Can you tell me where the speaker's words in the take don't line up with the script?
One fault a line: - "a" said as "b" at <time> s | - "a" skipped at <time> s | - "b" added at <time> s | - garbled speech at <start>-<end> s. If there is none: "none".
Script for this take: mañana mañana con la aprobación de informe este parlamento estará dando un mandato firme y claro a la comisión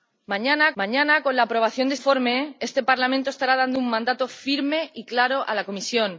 none